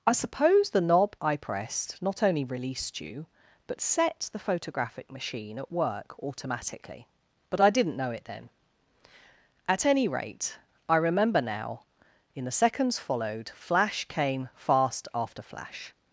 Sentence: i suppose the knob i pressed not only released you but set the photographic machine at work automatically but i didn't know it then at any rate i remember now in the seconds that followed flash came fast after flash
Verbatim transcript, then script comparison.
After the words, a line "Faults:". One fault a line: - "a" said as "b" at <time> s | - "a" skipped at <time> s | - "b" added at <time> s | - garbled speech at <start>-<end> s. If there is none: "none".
i suppose the knob i pressed not only released you but set the photographic machine at work automatically but i didn't know it then at any rate i remember now in the seconds followed flash came fast after flash
Faults:
- "that" skipped at 13.0 s